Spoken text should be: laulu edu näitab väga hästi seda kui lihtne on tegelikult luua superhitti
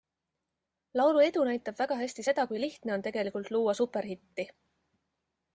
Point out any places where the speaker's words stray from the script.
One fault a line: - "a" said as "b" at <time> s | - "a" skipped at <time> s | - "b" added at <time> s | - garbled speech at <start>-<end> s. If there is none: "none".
none